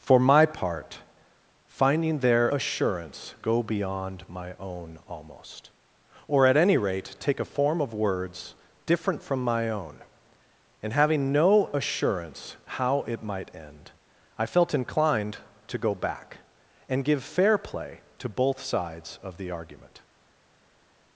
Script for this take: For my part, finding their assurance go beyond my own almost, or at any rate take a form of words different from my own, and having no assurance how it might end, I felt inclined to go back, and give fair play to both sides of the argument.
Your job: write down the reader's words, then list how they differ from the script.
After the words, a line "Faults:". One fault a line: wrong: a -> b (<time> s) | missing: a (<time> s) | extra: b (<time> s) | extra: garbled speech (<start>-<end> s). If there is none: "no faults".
For my part, finding their assurance go beyond my own almost, or at any rate take a form of words different from my own, and having no assurance how it might end, I felt inclined to go back, and give fair play to both sides of the argument.
Faults:
no faults